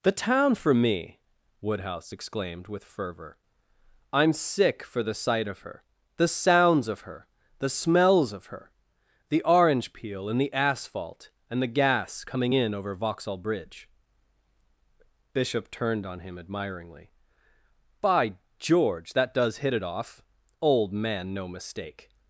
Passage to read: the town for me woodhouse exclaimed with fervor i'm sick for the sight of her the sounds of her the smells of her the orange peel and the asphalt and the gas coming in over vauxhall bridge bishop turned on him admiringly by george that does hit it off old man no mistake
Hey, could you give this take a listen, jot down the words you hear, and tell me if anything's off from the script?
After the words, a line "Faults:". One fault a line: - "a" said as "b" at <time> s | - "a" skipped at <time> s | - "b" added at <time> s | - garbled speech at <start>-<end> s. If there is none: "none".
the town for me woodhouse exclaimed with fervor i'm sick for the sight of her the sounds of her the smells of her the orange peel and the asphalt and the gas coming in over vauxhall bridge bishop turned on him admiringly by george that does hit it off old man no mistake
Faults:
none